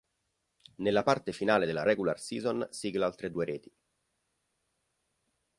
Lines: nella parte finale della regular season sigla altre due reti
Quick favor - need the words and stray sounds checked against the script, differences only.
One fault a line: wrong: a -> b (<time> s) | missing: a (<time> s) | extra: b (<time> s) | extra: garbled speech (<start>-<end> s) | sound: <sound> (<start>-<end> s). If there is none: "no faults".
no faults